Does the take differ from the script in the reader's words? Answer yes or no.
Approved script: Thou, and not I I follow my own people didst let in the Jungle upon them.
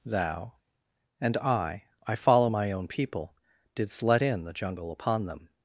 yes